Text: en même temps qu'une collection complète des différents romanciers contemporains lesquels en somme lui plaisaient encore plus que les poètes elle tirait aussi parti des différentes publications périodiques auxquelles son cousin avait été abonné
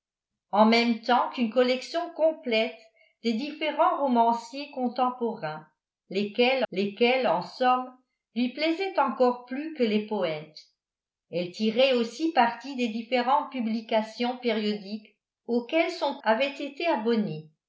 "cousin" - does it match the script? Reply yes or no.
no